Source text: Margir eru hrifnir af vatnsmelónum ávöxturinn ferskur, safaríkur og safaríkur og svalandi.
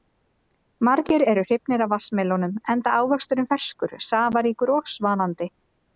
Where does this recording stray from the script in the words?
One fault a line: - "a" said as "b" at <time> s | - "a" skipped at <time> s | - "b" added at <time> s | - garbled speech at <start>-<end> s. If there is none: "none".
- "enda" added at 2.8 s
- "safaríkur og" skipped at 4.9 s